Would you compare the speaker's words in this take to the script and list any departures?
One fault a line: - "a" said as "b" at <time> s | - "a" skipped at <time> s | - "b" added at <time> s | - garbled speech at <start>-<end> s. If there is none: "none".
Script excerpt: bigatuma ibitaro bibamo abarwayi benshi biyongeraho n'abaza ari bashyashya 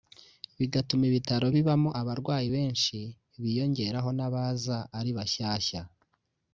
none